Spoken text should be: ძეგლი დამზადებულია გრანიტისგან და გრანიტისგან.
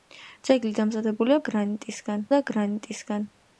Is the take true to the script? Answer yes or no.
yes